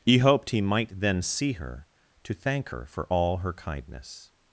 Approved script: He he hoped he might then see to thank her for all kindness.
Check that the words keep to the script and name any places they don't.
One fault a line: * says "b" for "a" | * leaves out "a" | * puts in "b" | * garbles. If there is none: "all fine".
* leaves out "he"
* puts in "her"
* puts in "her"